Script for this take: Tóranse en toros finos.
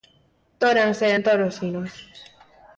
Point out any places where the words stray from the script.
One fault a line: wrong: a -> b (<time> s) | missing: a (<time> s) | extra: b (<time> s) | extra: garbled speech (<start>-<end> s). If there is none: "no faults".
no faults